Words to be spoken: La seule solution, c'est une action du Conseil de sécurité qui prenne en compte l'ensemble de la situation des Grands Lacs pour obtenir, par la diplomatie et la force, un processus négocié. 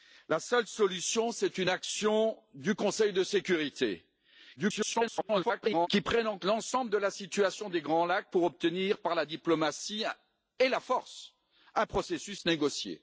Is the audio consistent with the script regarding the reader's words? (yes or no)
no